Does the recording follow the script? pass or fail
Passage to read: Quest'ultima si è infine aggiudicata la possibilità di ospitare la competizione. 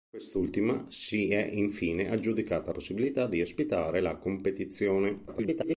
fail